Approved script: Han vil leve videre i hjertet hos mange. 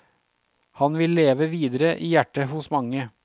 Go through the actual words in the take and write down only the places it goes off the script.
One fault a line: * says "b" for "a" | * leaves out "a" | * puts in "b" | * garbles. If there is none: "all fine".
all fine